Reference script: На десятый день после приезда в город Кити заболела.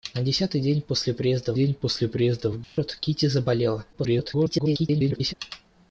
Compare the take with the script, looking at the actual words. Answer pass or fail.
fail